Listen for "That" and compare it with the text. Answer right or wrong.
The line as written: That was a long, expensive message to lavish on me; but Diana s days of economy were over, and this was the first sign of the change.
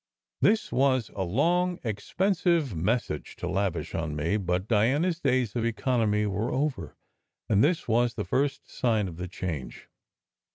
wrong